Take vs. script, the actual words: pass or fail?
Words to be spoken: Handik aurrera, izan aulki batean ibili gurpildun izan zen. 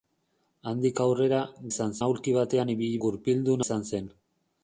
pass